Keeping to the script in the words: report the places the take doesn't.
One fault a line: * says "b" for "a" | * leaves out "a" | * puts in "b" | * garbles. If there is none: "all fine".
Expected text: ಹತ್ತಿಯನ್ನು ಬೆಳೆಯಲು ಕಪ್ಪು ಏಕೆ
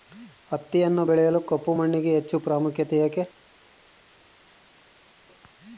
* puts in "ಮಣ್ಣಿಗೆ ಹೆಚ್ಚು ಪ್ರಾಮುಖ್ಯತೆ"